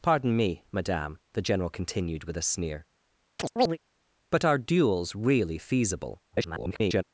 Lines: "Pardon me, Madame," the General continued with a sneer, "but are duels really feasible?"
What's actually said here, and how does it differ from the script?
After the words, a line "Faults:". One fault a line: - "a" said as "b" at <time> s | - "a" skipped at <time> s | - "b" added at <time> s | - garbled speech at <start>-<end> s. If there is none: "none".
"Pardon me, Madame," the General continued with a sneer, "but are duels really feasible?" [garbled]
Faults:
- garbled speech at 6.3-7.0 s